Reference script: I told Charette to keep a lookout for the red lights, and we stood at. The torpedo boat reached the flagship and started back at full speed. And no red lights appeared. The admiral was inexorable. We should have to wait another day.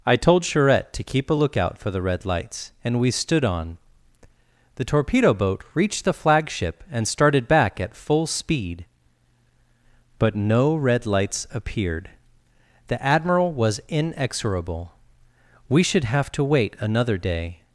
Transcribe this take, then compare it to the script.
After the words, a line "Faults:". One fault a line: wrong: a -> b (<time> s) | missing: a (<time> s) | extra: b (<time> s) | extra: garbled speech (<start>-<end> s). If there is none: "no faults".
I told Charette to keep a lookout for the red lights, and we stood on. The torpedo boat reached the flagship and started back at full speed. But no red lights appeared. The admiral was inexorable. We should have to wait another day.
Faults:
wrong: at -> on (3.4 s)
wrong: And -> But (10.2 s)